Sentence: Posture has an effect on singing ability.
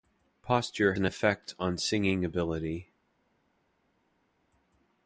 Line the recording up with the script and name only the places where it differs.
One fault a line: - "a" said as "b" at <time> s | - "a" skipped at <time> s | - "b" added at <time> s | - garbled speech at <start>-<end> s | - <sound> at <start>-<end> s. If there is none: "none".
- "has" skipped at 0.9 s